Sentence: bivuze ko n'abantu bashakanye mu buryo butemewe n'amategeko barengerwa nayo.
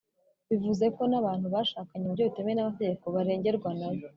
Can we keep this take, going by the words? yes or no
yes